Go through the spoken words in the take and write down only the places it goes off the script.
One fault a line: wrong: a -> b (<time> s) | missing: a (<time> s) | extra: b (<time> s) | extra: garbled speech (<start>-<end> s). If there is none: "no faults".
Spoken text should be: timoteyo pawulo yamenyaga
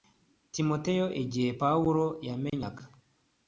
extra: igihe (1.2 s)